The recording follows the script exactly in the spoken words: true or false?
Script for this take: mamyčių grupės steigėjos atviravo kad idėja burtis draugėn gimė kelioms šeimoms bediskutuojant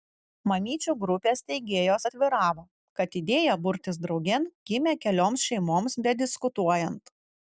true